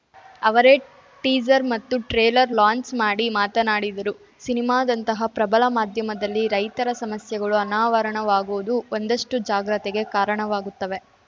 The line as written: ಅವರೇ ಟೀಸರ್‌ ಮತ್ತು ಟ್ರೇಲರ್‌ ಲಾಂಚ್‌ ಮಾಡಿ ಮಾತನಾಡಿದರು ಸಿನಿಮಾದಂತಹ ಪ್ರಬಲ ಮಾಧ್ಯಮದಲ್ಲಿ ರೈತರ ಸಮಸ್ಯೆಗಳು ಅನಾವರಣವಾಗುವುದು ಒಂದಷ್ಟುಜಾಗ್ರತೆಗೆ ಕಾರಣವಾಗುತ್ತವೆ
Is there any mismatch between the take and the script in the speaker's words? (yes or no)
no